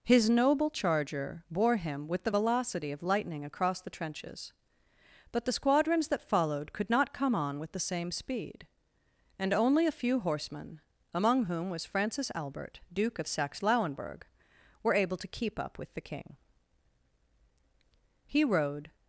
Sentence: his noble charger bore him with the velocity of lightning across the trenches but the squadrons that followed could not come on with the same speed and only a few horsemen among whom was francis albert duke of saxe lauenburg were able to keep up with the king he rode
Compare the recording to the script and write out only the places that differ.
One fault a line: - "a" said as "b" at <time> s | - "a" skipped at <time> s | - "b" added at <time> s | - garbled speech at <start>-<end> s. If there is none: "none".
none